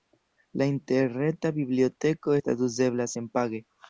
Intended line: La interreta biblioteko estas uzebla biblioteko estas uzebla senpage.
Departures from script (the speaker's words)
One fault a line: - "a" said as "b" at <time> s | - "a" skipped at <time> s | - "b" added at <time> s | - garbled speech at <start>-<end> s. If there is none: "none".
- "biblioteko estas uzebla" skipped at 3.1 s